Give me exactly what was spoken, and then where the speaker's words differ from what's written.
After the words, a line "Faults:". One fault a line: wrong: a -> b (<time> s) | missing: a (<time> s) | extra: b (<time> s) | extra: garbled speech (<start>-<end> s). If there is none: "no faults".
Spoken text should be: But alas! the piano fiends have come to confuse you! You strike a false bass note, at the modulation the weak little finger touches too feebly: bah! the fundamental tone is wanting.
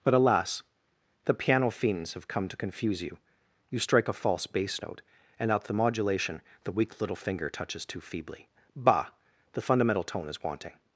But alas! the piano fiends have come to confuse you! You strike a false bass note, and at the modulation the weak little finger touches too feebly: bah! the fundamental tone is wanting.
Faults:
extra: and (5.4 s)